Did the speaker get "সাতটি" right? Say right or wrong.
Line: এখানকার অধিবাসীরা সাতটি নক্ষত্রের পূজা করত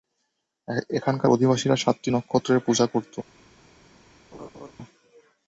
right